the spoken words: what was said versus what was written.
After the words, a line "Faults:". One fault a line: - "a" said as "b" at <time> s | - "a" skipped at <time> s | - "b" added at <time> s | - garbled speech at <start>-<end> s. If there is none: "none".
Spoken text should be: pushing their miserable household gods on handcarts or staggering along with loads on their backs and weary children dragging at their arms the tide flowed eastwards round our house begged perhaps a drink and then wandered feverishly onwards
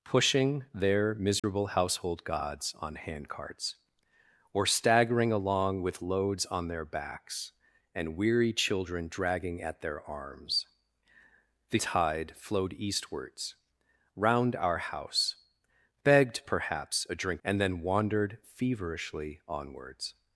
pushing their miserable household gods on handcarts or staggering along with loads on their backs and weary children dragging at their arms the tide flowed eastwards round our house begged perhaps a drink and then wandered feverishly onwards
Faults:
none